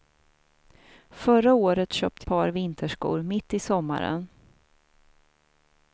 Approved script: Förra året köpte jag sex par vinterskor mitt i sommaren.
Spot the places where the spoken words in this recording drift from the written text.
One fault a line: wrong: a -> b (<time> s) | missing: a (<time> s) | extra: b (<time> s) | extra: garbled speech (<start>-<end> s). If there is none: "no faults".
missing: jag sex (2.3 s)